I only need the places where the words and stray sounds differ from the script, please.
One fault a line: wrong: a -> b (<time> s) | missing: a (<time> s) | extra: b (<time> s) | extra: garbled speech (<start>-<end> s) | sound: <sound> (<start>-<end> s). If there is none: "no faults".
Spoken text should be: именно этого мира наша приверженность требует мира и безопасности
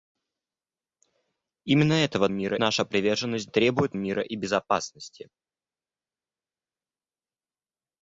no faults